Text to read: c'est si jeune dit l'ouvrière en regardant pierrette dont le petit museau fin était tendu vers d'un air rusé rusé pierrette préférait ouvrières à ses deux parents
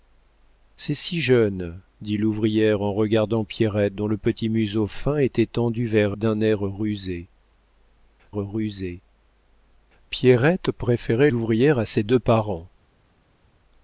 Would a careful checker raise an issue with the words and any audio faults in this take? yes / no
no